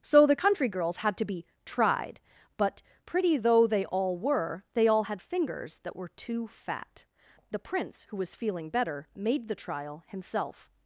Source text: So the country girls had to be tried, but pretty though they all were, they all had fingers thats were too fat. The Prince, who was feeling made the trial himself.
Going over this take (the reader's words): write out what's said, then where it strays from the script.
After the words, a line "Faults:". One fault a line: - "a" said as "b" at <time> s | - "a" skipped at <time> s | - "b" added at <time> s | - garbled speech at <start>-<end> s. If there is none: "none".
So the country girls had to be tried, but pretty though they all were, they all had fingers that were too fat. The Prince, who was feeling better, made the trial himself.
Faults:
- "thats" said as "that" at 5.8 s
- "better" added at 8.7 s